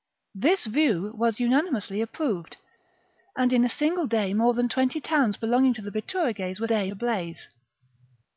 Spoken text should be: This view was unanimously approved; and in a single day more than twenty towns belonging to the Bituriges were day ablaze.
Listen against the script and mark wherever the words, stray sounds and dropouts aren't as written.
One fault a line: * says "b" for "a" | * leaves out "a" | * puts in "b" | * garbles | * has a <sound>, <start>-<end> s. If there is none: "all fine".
all fine